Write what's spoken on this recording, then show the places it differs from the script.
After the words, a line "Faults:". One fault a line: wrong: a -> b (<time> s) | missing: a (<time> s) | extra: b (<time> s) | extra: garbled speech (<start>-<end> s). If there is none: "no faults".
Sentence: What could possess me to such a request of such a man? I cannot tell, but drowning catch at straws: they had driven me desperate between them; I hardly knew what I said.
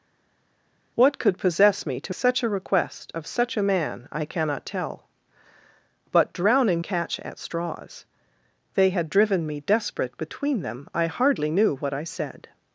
What could possess me to such a request of such a man? I cannot tell, but drowning catch at straws: they had driven me desperate between them; I hardly knew what I said.
Faults:
no faults